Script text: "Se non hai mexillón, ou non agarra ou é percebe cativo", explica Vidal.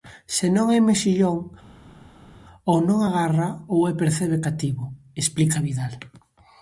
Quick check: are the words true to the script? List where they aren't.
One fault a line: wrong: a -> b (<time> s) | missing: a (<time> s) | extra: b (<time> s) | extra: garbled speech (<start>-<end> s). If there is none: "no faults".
no faults